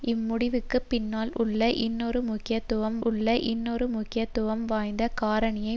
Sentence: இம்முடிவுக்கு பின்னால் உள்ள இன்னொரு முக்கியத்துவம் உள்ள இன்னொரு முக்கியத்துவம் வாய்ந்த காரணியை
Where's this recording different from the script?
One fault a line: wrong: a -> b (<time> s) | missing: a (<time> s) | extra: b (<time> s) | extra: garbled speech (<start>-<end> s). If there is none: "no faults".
no faults